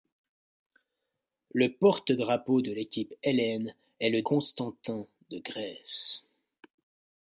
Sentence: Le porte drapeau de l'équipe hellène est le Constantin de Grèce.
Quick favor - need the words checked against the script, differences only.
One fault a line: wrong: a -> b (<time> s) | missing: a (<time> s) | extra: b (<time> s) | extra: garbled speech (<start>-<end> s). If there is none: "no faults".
no faults